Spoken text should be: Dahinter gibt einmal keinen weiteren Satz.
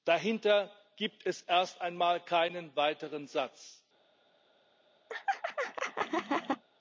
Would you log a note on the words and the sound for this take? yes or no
yes